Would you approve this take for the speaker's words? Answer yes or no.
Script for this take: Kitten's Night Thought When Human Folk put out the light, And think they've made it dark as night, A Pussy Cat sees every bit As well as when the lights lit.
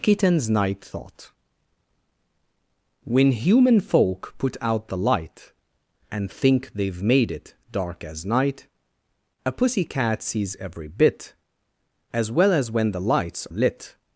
yes